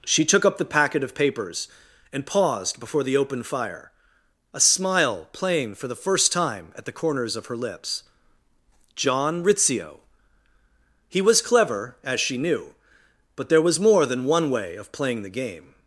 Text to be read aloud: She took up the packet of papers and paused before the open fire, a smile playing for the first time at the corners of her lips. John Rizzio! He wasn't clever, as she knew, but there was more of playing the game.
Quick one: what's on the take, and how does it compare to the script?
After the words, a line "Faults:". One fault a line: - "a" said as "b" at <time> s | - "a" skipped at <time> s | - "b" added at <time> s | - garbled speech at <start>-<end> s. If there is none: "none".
She took up the packet of papers and paused before the open fire, a smile playing for the first time at the corners of her lips. John Rizzio! He was clever, as she knew, but there was more than one way of playing the game.
Faults:
- "wasn't" said as "was" at 11.2 s
- "than one way" added at 14.1 s